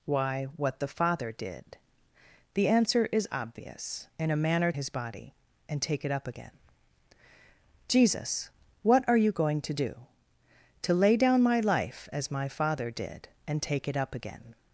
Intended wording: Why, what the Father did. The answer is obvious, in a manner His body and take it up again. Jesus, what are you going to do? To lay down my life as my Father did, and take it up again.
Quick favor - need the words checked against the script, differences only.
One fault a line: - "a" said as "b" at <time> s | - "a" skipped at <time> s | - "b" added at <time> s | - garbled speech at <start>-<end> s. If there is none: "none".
none